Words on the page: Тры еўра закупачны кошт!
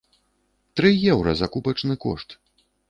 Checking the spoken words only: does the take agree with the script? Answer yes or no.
yes